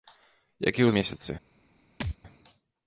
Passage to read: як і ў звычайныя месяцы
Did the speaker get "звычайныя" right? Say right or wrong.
wrong